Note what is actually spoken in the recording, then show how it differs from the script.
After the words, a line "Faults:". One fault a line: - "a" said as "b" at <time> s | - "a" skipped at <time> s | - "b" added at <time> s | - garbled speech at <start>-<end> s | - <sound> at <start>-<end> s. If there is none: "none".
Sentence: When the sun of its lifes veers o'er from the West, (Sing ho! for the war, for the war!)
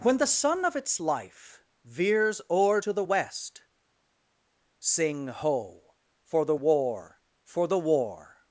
When the sun of its life veers o'er to the West, (Sing ho! for the war, for the war!)
Faults:
- "lifes" said as "life" at 1.0 s
- "from" said as "to" at 2.8 s